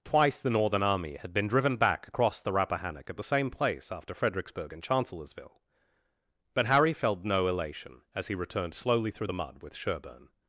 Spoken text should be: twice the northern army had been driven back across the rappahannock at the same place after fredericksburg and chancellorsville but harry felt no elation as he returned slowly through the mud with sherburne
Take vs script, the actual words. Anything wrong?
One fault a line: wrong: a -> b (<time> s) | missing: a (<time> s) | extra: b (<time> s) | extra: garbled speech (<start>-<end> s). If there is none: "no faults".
no faults